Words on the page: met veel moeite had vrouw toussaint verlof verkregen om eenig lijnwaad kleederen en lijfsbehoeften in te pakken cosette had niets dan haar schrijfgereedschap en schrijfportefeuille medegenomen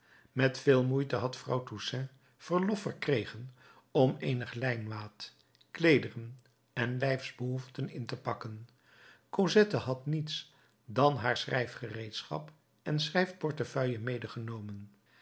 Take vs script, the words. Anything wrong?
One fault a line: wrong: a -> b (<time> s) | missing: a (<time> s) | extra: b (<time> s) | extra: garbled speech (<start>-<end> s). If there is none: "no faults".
no faults